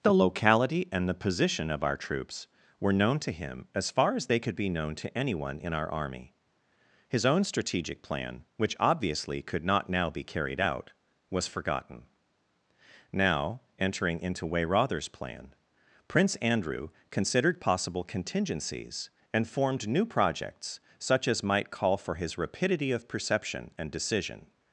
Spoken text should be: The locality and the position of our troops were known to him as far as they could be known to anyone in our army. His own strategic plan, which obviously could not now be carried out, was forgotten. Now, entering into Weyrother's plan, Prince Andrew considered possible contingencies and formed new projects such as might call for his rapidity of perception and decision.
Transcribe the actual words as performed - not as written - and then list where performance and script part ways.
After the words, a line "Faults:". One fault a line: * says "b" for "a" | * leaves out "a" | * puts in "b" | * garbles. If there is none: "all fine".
The locality and the position of our troops were known to him as far as they could be known to anyone in our army. His own strategic plan, which obviously could not now be carried out, was forgotten. Now, entering into Weyrother's plan, Prince Andrew considered possible contingencies and formed new projects such as might call for his rapidity of perception and decision.
Faults:
all fine